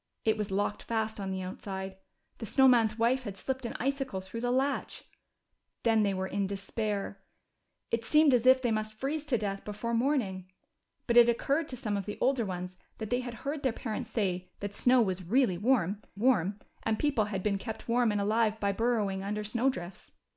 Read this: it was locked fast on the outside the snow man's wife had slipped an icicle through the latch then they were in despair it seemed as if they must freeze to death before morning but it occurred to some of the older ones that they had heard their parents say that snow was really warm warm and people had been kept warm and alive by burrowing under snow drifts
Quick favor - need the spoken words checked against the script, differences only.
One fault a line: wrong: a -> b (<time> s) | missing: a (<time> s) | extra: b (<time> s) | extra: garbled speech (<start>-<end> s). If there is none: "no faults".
no faults